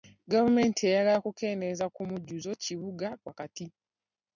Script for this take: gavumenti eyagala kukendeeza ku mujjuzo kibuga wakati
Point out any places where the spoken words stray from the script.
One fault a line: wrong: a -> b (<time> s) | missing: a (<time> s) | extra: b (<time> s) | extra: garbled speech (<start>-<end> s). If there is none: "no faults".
no faults